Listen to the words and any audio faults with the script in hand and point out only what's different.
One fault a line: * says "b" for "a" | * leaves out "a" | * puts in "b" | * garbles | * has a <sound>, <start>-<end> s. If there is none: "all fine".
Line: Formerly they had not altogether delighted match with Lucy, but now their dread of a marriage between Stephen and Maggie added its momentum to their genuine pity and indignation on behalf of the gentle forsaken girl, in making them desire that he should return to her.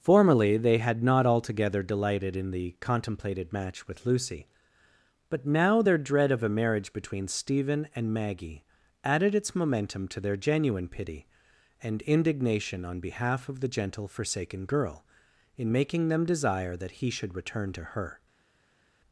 * puts in "in the contemplated"